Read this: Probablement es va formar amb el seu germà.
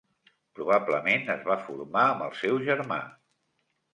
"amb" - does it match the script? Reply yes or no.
yes